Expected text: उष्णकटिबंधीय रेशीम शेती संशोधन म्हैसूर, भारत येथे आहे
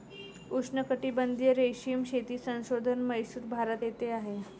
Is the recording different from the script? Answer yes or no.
no